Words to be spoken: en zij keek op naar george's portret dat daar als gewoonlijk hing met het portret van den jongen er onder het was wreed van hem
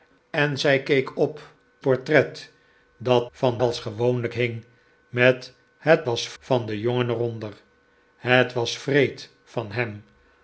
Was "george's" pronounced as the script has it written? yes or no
no